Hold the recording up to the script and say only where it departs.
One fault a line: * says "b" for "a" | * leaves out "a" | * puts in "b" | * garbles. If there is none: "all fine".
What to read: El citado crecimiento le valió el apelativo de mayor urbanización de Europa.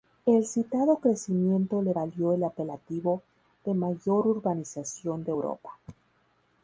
all fine